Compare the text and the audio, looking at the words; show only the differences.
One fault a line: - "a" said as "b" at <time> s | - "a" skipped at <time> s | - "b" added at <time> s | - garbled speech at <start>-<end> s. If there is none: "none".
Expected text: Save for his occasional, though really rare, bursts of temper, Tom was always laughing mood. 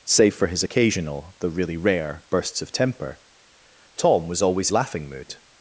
none